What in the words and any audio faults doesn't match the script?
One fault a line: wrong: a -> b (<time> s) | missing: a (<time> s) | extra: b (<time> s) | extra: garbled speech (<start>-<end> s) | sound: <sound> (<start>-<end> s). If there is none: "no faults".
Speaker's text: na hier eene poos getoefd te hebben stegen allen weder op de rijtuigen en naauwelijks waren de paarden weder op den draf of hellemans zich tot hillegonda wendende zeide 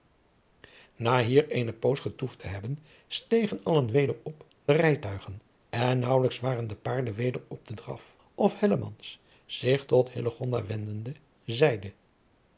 no faults